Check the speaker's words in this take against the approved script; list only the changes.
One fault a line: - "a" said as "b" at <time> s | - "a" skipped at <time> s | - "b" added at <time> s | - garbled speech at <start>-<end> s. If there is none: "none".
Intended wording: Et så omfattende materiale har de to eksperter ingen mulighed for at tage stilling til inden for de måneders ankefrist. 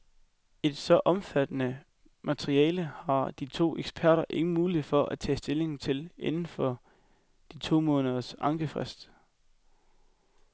- "to" added at 7.6 s